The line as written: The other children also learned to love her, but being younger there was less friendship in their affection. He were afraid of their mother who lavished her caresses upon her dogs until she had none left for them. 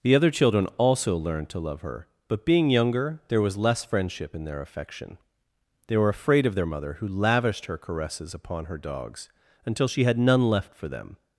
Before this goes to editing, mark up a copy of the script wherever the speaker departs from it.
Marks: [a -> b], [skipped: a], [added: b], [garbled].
The other children also learned to love her, but being younger there was less friendship in their affection. [He -> They] were afraid of their mother who lavished her caresses upon her dogs until she had none left for them.